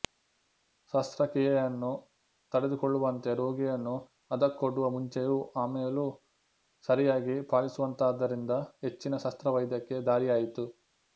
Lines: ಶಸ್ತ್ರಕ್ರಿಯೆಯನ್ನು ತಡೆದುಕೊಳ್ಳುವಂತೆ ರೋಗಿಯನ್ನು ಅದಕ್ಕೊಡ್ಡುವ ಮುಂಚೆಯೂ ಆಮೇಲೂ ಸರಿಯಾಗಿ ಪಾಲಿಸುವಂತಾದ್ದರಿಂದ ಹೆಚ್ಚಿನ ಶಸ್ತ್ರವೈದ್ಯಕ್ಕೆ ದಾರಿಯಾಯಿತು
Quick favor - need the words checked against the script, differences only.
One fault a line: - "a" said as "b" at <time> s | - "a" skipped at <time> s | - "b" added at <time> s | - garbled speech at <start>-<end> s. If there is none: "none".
none